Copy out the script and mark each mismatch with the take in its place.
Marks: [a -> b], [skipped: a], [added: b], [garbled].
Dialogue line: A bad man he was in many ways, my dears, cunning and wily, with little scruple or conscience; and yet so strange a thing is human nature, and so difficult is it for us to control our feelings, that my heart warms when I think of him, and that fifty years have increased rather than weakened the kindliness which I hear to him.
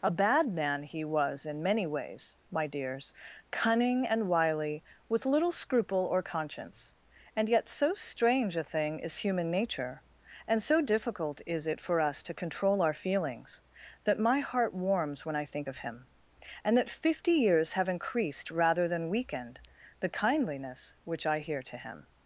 A bad man he was in many ways, my dears, cunning and wily, with little scruple or conscience; and yet so strange a thing is human nature, and so difficult is it for us to control our feelings, that my heart warms when I think of him, and that fifty years have increased rather than weakened the kindliness which I hear to him.